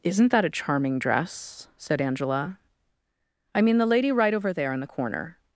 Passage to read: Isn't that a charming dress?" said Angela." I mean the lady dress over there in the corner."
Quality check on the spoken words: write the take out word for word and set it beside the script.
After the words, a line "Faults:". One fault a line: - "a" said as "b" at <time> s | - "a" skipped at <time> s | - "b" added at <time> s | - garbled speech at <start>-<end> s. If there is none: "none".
Isn't that a charming dress?" said Angela." I mean the lady right over there in the corner."
Faults:
- "dress" said as "right" at 4.1 s